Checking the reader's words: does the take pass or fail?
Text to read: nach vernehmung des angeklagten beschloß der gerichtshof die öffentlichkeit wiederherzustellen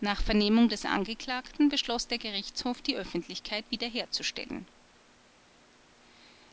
pass